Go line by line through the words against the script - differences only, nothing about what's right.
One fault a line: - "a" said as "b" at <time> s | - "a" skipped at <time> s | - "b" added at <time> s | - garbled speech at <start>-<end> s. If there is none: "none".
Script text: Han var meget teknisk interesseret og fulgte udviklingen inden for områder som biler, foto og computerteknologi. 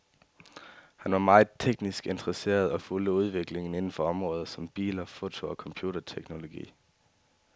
none